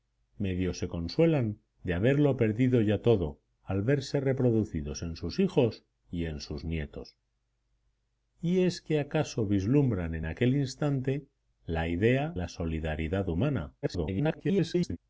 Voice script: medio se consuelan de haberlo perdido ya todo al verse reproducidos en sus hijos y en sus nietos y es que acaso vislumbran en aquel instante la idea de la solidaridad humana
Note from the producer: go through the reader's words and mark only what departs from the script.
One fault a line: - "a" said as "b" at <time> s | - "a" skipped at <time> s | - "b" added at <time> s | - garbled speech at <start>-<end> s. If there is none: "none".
- "de" skipped at 12.3 s
- garbled speech at 13.8-15.0 s